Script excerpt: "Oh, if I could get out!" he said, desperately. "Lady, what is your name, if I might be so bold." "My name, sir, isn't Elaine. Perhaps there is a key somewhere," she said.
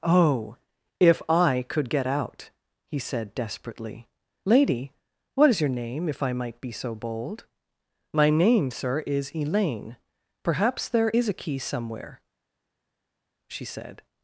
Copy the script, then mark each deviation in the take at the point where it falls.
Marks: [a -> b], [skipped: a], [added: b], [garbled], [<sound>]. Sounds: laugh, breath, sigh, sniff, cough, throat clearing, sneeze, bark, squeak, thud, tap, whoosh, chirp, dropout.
"Oh, if I could get out!" he said, desperately. "Lady, what is your name, if I might be so bold." "My name, sir, [isn't -> is] Elaine. Perhaps there is a key somewhere," she said.